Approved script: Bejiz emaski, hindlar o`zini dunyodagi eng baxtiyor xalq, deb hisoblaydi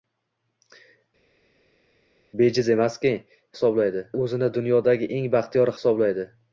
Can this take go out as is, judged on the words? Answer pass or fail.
fail